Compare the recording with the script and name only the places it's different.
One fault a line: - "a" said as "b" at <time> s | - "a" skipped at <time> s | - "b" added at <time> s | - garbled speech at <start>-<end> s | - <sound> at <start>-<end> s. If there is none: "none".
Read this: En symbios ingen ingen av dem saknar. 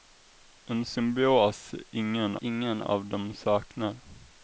none